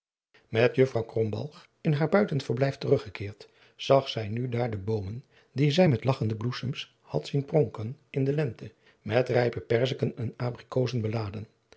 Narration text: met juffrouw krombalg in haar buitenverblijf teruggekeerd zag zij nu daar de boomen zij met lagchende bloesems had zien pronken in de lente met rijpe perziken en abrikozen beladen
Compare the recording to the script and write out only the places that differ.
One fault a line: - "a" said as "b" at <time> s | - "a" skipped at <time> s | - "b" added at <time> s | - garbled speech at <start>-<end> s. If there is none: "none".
- "die" added at 5.5 s